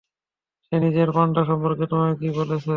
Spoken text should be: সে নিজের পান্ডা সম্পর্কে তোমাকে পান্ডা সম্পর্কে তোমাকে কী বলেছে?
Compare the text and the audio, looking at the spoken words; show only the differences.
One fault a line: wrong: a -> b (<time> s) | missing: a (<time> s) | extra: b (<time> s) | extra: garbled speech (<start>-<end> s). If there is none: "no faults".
missing: পান্ডা সম্পর্কে তোমাকে (2.1 s)